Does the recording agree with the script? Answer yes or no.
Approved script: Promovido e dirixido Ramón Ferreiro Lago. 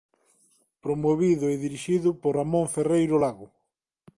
no